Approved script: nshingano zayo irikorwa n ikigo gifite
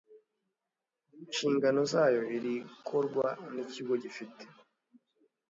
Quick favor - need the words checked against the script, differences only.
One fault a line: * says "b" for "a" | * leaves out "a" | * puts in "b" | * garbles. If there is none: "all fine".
all fine